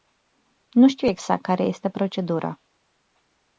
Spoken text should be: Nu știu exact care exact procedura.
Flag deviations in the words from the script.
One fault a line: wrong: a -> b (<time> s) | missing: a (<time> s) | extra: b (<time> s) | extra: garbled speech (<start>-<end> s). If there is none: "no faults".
wrong: exact -> este (1.6 s)